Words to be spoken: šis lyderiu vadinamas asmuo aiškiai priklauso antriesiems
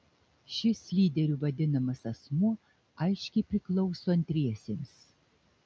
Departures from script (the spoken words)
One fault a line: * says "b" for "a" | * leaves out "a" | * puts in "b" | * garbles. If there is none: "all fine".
all fine